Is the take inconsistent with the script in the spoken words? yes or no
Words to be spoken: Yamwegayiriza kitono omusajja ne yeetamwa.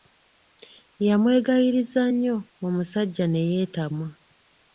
yes